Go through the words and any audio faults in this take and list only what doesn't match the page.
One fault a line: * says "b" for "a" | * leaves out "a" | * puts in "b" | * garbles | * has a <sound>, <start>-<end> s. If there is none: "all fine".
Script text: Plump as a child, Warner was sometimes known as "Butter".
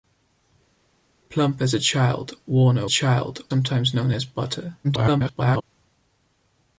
* says "child" for "was"
* garbles